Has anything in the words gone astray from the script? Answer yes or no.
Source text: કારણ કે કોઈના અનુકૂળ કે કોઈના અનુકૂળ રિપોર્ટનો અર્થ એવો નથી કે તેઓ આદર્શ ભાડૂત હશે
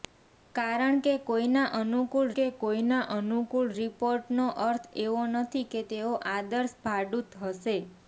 no